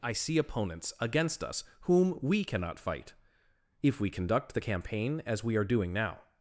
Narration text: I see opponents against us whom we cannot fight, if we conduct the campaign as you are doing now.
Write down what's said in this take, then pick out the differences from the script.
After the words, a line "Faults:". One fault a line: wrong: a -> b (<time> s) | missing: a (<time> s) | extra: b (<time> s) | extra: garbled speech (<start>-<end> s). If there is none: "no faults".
I see opponents against us whom we cannot fight, if we conduct the campaign as we are doing now.
Faults:
wrong: you -> we (5.4 s)